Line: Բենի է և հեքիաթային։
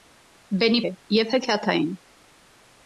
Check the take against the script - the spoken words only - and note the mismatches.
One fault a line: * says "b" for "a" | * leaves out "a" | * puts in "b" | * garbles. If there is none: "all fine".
all fine